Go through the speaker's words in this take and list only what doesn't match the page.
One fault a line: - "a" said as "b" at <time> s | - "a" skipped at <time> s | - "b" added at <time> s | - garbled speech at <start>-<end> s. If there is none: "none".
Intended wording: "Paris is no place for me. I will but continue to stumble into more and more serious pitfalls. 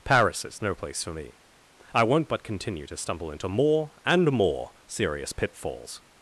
- "will" said as "won't" at 2.0 s